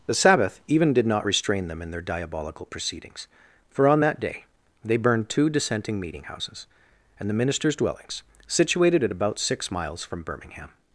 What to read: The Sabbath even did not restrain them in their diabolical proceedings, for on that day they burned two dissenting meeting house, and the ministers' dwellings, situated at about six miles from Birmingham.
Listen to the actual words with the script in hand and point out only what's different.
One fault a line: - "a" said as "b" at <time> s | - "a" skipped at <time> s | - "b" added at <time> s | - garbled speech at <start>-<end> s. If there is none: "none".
- "house" said as "houses" at 6.2 s